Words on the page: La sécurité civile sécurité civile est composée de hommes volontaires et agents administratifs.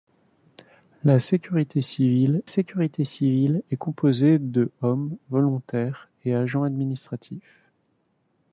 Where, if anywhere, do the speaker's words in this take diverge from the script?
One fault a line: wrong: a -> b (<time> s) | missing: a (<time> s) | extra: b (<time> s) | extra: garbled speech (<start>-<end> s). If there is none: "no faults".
no faults